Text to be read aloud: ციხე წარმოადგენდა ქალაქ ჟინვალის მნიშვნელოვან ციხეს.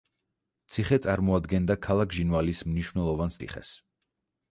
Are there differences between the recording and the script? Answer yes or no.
no